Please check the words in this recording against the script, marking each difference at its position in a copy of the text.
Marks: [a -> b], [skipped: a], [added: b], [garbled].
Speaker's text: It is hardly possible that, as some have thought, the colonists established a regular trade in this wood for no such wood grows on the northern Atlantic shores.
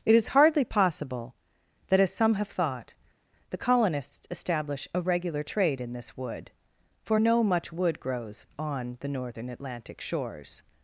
It is hardly possible that, as some have thought, the colonists [established -> establish] a regular trade in this wood for no [such -> much] wood grows on the northern Atlantic shores.